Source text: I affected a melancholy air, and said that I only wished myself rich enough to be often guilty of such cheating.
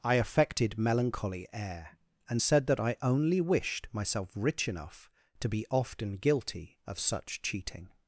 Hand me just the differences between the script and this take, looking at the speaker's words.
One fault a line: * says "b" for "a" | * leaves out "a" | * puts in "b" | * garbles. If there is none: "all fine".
* leaves out "a"